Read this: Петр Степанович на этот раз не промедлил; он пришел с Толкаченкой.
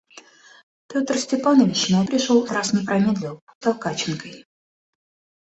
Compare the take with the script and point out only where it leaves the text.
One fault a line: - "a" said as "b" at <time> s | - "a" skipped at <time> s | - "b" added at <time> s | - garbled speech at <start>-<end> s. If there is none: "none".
- "этот" said as "пришел" at 2.1 s
- "он пришел с" skipped at 3.4 s